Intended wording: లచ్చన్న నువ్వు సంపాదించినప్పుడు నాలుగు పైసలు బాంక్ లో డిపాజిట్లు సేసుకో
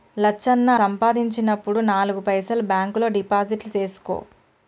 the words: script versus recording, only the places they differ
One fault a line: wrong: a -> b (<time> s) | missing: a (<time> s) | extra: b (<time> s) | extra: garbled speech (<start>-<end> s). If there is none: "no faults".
missing: నువ్వు (0.7 s)